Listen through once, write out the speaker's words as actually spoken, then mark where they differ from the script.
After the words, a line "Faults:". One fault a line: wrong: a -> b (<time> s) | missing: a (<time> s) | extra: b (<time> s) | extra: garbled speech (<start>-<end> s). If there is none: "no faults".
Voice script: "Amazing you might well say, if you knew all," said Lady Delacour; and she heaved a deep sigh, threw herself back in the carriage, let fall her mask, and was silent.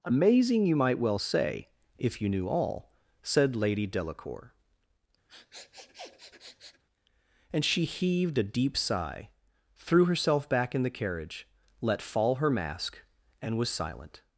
"Amazing you might well say, if you knew all," said Lady Delacour; and she heaved a deep sigh, threw herself back in the carriage, let fall her mask, and was silent.
Faults:
no faults